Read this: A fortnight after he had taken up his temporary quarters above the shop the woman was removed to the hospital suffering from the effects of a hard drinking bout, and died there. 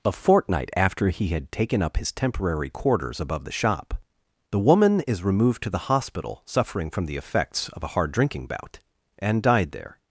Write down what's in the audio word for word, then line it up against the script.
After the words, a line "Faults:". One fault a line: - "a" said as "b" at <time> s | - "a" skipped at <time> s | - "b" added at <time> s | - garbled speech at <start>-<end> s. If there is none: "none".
A fortnight after he had taken up his temporary quarters above the shop the woman is removed to the hospital suffering from the effects of a hard drinking bout, and died there.
Faults:
- "was" said as "is" at 5.1 s